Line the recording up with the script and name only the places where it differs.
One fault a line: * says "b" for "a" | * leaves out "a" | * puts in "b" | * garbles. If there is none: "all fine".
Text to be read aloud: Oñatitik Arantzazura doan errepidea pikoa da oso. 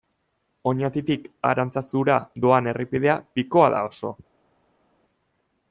all fine